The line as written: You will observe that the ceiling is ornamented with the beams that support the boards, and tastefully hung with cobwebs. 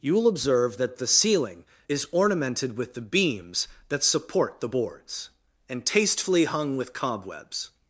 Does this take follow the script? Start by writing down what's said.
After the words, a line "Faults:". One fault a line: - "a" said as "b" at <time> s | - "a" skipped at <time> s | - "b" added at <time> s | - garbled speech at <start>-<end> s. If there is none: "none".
You will observe that the ceiling is ornamented with the beams that support the boards, and tastefully hung with cobwebs.
Faults:
none